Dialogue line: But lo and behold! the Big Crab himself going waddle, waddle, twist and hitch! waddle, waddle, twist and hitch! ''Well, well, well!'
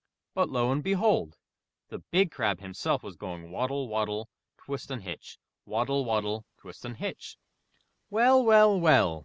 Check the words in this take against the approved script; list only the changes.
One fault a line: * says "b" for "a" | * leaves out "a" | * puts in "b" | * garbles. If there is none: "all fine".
* puts in "was"